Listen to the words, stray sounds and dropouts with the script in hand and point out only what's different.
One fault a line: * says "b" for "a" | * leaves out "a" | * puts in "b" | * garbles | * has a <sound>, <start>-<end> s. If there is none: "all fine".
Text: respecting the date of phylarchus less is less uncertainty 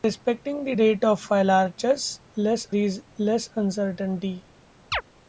* has a chirp, 4.9-5.0 s